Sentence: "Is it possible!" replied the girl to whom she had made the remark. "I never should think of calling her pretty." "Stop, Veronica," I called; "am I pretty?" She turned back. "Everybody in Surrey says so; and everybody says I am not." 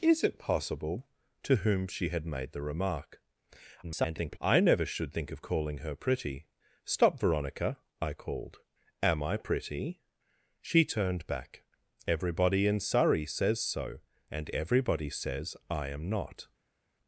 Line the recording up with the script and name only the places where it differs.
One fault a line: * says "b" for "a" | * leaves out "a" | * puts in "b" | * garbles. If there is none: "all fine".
* leaves out "replied the girl"
* garbles